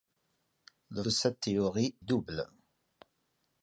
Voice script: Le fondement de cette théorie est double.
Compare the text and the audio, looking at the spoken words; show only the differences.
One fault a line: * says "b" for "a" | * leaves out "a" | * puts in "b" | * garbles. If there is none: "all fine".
* leaves out "fondement"
* leaves out "est"